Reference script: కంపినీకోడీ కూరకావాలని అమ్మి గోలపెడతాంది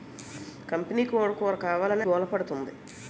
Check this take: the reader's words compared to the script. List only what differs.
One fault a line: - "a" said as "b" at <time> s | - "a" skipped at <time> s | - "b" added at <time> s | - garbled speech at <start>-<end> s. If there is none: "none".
- "అమ్మి" skipped at 2.0 s